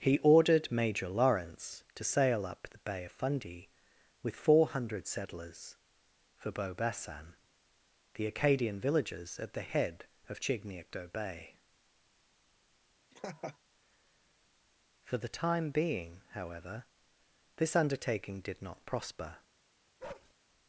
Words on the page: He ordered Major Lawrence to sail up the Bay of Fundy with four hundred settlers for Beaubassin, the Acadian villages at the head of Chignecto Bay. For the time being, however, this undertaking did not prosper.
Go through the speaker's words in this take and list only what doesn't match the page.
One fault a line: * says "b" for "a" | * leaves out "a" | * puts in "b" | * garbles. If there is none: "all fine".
all fine